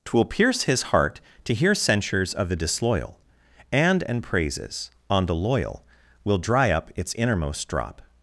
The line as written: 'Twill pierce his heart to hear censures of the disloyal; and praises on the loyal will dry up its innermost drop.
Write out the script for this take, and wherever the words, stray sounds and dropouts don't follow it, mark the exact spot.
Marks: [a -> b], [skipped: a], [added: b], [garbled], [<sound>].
'Twill pierce his heart to hear censures of the disloyal; and [added: and] praises on the loyal will dry up its innermost drop.